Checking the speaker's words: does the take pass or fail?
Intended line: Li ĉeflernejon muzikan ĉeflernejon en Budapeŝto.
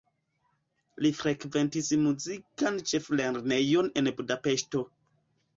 fail